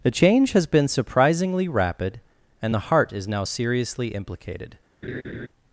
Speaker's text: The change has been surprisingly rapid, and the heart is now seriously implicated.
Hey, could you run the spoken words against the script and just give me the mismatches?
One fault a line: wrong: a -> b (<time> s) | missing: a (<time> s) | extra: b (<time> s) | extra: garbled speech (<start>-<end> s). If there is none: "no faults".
no faults